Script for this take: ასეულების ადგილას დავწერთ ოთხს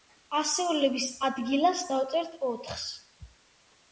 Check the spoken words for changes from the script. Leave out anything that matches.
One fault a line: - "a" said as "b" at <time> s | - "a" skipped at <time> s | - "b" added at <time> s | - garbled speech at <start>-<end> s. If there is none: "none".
none